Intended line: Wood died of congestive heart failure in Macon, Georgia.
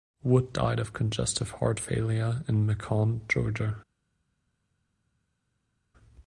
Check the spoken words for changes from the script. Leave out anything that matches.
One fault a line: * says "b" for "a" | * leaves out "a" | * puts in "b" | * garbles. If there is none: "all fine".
all fine